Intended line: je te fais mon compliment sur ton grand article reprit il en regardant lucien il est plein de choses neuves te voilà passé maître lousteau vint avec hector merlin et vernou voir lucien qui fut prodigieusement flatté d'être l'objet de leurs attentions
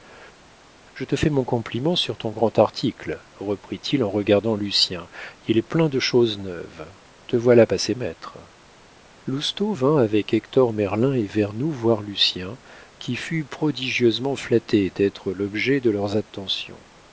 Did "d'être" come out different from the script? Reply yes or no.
no